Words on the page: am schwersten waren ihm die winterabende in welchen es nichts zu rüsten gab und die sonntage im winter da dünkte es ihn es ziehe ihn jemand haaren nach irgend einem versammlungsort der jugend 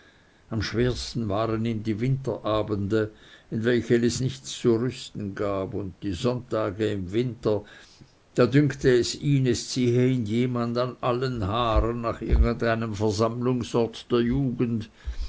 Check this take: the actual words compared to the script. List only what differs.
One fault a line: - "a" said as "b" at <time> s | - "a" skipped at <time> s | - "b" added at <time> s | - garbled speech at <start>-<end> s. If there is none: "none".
- "an allen" added at 10.8 s